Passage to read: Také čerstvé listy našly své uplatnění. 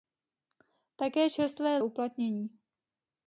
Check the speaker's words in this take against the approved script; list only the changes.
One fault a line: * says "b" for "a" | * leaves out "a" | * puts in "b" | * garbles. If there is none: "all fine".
* leaves out "listy našly své"